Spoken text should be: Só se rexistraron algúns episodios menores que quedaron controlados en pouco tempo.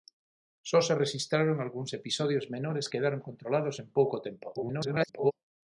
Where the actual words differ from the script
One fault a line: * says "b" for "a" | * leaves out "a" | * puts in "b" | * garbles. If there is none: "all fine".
* leaves out "que"
* garbles